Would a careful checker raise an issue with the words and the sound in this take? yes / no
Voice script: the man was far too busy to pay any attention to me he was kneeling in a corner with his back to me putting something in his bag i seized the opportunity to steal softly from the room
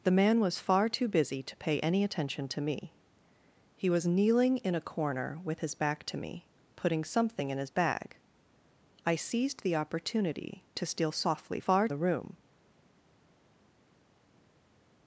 yes